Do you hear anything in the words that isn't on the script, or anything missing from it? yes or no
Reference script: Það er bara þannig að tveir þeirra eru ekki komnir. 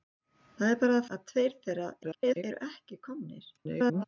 yes